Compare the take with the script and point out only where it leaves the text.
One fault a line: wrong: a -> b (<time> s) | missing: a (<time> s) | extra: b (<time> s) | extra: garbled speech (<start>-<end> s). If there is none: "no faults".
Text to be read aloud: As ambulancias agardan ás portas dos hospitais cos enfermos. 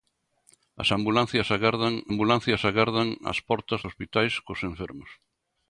extra: ambulancias agardan (2.1 s)
missing: dos (3.8 s)